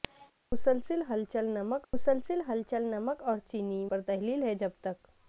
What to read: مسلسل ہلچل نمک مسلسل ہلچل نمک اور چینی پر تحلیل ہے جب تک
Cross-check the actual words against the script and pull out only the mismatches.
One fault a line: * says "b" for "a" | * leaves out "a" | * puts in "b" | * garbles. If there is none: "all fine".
all fine